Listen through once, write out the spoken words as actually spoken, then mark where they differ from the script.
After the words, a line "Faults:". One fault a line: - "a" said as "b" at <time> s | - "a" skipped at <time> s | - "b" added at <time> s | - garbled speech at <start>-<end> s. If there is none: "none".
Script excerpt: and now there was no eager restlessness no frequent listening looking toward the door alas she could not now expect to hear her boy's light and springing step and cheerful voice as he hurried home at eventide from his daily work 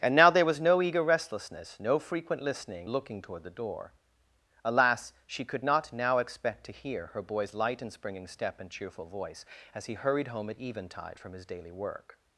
and now there was no eager restlessness no frequent listening looking toward the door alas she could not now expect to hear her boy's light and springing step and cheerful voice as he hurried home at eventide from his daily work
Faults:
none